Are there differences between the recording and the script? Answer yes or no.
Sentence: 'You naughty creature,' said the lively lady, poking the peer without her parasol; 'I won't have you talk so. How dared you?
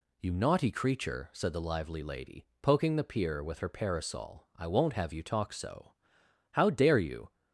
yes